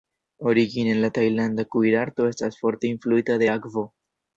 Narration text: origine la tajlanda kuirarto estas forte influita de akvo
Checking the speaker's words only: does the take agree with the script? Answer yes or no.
yes